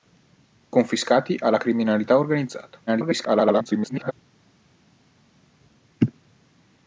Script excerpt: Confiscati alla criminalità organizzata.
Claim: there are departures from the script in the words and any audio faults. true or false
true